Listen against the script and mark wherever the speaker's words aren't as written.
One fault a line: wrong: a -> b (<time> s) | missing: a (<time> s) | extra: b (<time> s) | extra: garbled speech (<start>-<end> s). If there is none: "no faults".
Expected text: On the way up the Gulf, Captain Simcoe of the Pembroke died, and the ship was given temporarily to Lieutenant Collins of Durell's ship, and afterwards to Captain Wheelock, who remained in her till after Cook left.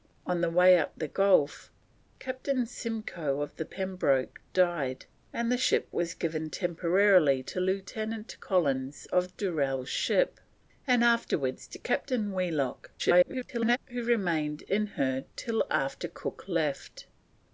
extra: garbled speech (13.0-13.8 s)